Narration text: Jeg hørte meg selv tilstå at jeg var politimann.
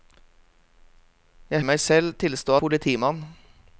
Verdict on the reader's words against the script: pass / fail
fail